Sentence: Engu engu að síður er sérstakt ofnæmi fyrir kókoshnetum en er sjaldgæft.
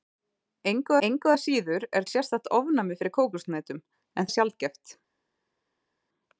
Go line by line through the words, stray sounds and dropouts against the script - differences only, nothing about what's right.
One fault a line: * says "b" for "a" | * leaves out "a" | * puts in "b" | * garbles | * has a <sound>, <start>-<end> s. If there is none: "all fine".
all fine